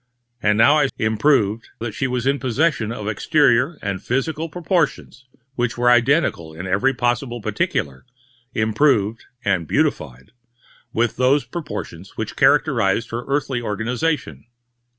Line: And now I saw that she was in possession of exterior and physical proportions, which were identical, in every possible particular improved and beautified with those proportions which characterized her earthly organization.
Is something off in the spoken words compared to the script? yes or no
yes